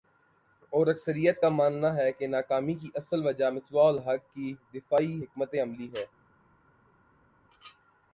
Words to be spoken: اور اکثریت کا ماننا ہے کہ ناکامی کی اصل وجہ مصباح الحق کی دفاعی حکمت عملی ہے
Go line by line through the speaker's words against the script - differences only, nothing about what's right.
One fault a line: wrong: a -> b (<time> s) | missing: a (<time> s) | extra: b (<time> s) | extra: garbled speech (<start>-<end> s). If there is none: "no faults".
no faults